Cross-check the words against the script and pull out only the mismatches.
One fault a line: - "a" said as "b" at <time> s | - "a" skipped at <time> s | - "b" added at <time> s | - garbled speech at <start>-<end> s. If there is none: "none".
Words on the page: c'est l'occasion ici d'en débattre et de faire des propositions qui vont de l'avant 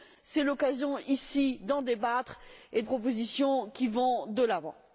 - "de faire des" skipped at 2.8 s